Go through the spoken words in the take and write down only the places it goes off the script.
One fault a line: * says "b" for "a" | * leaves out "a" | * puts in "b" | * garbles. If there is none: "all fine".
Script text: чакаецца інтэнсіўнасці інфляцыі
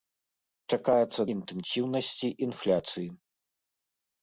all fine